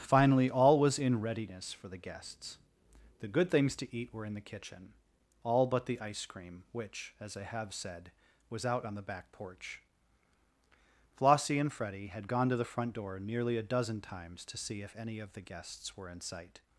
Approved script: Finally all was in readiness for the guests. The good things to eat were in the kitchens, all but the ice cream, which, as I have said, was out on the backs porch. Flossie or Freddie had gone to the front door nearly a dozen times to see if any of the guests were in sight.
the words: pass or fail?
fail